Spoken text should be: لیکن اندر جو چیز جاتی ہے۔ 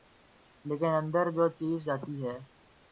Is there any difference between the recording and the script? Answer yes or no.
no